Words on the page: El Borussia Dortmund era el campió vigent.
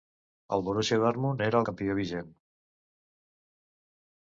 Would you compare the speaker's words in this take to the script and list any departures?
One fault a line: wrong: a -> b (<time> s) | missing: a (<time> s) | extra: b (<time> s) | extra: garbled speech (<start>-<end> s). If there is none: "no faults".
no faults